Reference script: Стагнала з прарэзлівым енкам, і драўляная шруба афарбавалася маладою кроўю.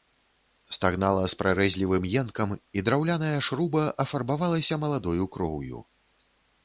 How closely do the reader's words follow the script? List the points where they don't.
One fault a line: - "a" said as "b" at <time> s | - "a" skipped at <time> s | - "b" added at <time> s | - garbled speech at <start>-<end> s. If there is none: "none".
none